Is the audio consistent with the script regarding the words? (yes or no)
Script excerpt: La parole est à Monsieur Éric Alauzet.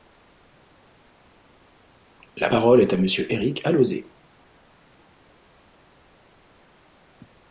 yes